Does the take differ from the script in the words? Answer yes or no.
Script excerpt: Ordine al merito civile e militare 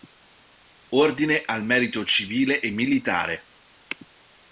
no